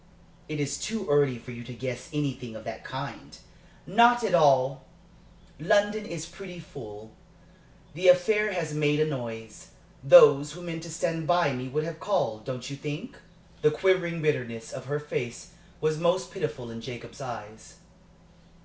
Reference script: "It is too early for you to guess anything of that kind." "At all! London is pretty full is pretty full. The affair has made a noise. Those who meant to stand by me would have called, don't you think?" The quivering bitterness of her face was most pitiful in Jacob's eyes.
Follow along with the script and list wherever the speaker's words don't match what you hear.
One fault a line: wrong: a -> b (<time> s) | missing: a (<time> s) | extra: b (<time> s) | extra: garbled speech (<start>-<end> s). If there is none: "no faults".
extra: Not (3.8 s)
missing: is pretty full (7.1 s)